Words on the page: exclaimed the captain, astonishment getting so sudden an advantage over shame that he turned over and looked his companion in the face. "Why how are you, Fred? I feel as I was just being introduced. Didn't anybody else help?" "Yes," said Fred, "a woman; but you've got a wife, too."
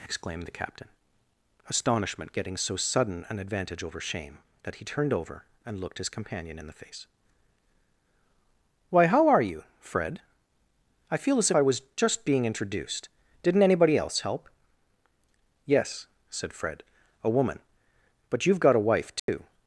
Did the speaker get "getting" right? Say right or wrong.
right